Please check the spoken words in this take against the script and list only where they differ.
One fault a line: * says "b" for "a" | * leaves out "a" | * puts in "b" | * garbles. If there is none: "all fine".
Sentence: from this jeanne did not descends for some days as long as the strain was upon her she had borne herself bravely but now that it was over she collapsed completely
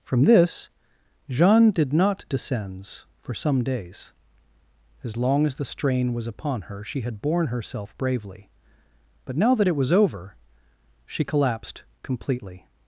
all fine